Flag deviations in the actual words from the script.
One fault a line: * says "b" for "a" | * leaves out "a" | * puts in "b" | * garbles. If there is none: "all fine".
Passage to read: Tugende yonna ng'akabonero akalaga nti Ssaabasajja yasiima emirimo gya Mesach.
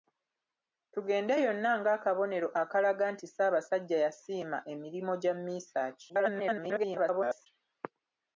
* garbles